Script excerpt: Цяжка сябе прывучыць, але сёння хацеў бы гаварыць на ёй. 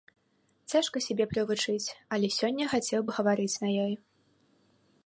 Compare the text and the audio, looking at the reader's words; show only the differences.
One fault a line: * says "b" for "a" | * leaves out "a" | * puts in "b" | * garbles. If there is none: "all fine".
all fine